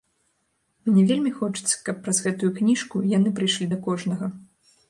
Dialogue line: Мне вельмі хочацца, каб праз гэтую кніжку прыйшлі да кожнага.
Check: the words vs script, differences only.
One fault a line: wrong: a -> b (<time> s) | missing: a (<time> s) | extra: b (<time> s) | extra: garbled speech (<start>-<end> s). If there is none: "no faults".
extra: яны (3.2 s)